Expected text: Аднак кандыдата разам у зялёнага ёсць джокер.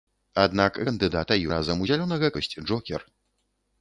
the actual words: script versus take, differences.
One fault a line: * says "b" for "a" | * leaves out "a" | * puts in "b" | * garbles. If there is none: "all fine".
all fine